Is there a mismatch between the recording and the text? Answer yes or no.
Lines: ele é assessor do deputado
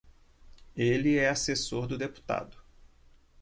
no